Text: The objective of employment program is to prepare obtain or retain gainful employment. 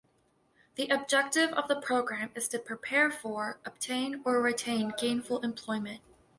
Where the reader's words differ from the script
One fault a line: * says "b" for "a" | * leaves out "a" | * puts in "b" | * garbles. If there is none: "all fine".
* says "the" for "employment"
* puts in "for"